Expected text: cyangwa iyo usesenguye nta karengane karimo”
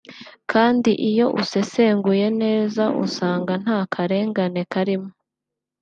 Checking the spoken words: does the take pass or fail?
fail